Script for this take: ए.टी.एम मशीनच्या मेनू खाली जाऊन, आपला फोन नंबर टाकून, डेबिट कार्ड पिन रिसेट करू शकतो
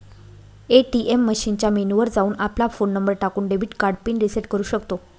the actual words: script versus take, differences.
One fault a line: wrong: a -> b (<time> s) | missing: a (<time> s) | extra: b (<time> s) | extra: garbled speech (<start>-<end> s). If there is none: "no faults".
wrong: खाली -> वर (2.0 s)